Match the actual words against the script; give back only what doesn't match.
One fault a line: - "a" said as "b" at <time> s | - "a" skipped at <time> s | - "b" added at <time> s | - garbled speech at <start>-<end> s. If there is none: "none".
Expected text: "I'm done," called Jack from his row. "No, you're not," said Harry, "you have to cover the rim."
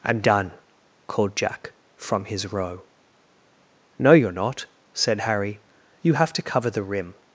none